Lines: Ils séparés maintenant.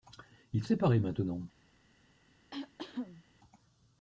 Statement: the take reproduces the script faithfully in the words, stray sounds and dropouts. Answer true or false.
false